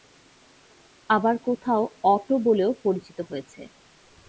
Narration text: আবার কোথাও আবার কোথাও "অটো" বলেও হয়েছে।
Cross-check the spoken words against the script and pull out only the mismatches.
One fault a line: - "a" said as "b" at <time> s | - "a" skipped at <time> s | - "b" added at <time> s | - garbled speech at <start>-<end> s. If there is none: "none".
- "আবার কোথাও" skipped at 1.8 s
- "পরিচিত" added at 2.8 s